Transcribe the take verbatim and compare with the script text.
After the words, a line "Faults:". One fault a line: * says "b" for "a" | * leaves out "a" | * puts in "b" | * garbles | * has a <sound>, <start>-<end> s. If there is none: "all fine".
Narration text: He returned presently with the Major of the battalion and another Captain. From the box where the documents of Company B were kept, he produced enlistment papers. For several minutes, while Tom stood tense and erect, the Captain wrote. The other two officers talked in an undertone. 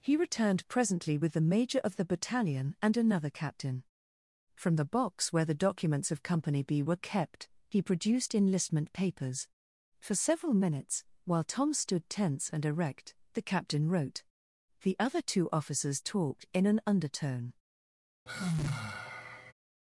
He returned presently with the Major of the battalion and another Captain. From the box where the documents of Company B were kept, he produced enlistment papers. For several minutes, while Tom stood tense and erect, the Captain wrote. The other two officers talked in an undertone.
Faults:
* has a sigh, 18.3-19.5 s